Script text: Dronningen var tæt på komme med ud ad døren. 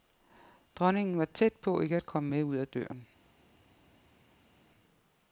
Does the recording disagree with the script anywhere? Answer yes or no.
yes